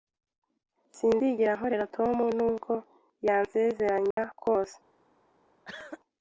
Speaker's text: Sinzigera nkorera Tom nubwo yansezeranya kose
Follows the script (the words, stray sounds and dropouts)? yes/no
no